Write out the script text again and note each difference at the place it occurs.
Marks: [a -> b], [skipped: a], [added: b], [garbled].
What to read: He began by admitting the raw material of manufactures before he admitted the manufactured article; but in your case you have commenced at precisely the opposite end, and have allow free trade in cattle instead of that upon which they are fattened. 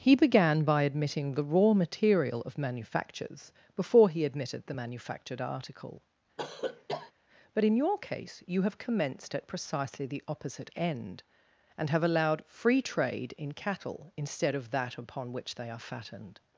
He began by admitting the raw material of manufactures before he admitted the manufactured article; but in your case you have commenced at precisely the opposite end, and have [allow -> allowed] free trade in cattle instead of that upon which they are fattened.